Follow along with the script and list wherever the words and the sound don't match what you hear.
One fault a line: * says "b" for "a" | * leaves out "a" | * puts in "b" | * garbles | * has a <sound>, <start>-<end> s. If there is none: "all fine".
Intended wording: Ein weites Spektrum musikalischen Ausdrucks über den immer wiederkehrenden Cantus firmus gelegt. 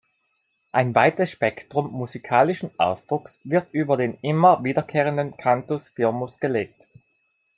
* puts in "wird"